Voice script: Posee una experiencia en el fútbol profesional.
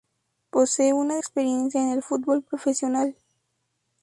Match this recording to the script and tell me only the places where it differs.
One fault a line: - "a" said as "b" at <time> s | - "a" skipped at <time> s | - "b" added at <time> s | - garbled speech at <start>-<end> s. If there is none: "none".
none